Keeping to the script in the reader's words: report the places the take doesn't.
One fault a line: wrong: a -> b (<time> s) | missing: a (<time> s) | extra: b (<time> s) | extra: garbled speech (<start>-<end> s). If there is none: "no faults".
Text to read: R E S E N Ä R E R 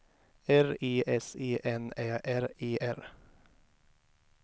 no faults